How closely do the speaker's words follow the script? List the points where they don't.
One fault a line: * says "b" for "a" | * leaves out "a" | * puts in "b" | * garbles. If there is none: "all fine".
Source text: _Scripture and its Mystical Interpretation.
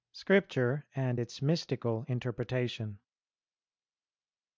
all fine